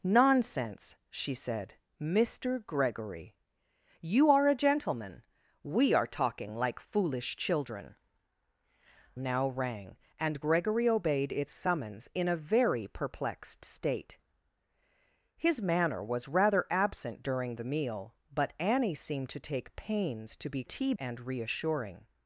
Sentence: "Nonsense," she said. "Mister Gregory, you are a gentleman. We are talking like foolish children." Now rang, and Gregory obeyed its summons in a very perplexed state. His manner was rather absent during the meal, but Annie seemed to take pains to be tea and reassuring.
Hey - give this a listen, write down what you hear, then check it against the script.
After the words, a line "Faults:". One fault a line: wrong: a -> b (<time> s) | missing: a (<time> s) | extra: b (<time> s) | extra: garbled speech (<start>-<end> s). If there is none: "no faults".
"Nonsense," she said. "Mister Gregory, you are a gentleman. We are talking like foolish children." Now rang, and Gregory obeyed its summons in a very perplexed state. His manner was rather absent during the meal, but Annie seemed to take pains to be tea and reassuring.
Faults:
no faults